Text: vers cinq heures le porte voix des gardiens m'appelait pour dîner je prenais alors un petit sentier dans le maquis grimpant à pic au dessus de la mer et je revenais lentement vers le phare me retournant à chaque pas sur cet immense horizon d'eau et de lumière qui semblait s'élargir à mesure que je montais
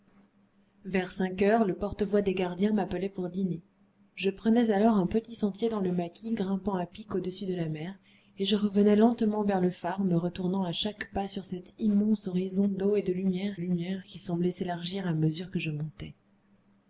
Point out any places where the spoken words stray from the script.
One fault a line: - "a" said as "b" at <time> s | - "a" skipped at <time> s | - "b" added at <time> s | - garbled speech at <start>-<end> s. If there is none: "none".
- "lumière" added at 13.6 s